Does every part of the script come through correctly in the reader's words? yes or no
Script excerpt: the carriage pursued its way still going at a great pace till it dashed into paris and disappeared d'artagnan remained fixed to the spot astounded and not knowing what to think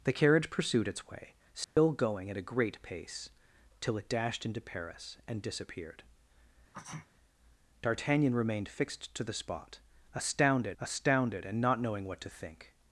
no